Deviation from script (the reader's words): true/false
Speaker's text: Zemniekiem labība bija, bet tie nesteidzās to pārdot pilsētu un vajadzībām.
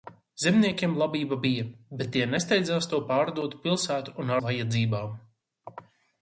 false